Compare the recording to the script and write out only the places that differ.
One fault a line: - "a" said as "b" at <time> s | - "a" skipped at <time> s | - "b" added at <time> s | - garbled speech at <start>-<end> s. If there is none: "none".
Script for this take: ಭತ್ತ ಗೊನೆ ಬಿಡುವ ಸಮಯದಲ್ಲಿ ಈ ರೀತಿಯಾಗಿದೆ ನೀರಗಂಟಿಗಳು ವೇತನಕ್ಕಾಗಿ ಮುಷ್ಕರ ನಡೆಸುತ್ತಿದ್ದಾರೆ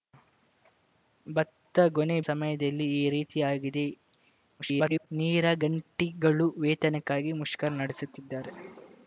- "ಬಿಡುವ" skipped at 2.1 s
- garbled speech at 4.6-5.1 s